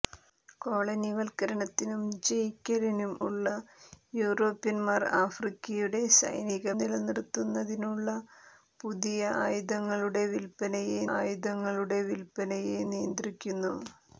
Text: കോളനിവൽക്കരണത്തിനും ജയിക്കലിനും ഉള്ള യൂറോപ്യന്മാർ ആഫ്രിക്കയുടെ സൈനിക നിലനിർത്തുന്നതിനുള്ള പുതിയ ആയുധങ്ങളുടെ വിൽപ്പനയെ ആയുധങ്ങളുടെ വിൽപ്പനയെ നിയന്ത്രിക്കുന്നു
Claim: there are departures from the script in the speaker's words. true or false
false